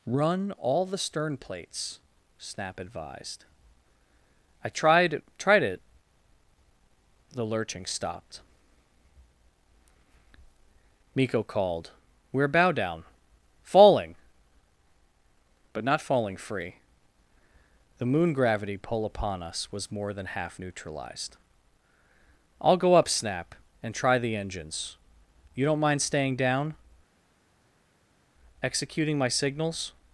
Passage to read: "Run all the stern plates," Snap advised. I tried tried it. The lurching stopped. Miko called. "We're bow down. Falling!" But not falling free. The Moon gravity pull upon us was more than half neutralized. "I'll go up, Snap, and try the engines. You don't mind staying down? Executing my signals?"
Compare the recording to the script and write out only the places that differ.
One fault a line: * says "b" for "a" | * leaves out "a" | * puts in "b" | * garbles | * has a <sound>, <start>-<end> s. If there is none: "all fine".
all fine